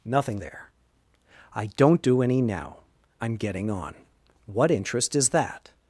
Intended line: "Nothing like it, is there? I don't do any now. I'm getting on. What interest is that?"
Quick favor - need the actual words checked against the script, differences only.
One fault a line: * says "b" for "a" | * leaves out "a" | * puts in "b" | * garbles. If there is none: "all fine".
* leaves out "like it is"